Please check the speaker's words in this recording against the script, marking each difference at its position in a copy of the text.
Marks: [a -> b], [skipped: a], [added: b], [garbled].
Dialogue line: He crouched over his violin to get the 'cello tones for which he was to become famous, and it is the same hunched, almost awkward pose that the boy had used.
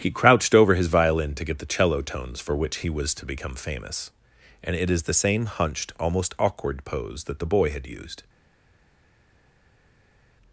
He crouched over his violin to get the 'cello tones for which he was to become famous, and it is the same hunched, almost awkward pose that the boy had used.